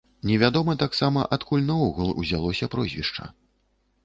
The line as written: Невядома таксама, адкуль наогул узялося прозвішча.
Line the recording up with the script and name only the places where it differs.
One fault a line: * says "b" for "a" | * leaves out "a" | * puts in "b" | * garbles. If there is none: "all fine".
all fine